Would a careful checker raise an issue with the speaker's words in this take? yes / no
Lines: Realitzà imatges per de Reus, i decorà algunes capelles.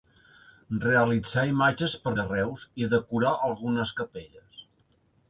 no